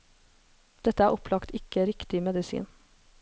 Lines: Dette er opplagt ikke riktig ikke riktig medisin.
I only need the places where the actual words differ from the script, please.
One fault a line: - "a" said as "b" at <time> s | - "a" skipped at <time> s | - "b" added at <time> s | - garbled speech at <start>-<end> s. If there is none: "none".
- "ikke riktig" skipped at 2.2 s